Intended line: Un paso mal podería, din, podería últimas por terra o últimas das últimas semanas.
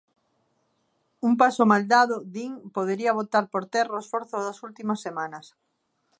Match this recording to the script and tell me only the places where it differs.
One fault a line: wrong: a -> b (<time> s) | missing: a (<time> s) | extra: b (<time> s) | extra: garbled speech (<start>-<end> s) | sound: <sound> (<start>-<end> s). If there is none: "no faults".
wrong: podería -> dado (1.9 s)
wrong: últimas -> botar (3.2 s)
wrong: últimas -> esforzo (4.0 s)